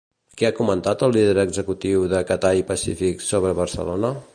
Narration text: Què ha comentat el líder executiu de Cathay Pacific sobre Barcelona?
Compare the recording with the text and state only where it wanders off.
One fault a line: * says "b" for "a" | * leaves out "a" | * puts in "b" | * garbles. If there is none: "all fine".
all fine